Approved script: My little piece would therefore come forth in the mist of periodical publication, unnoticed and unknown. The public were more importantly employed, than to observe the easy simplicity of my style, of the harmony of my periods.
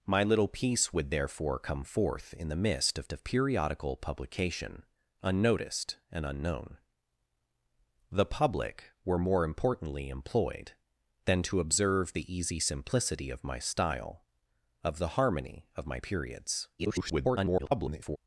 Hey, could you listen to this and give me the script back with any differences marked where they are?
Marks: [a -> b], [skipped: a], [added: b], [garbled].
My little piece would therefore come forth in the mist of [added: of] periodical publication, unnoticed and unknown. The public were more importantly employed, than to observe the easy simplicity of my style, of the harmony of my periods. [garbled]